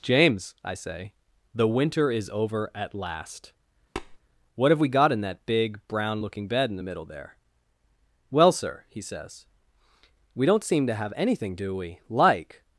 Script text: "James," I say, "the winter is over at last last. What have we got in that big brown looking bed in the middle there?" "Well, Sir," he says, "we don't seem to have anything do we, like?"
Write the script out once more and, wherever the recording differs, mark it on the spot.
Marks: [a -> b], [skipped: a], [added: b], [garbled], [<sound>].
"James," I say, "the winter is over at last [skipped: last.] [tap] What have we got in that big brown looking bed in the middle there?" "Well, Sir," he says, "we don't seem to have anything do we, like?"